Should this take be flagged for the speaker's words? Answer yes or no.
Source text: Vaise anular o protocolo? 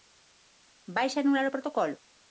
no